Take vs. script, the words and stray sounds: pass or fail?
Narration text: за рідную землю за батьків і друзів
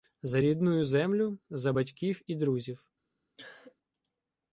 fail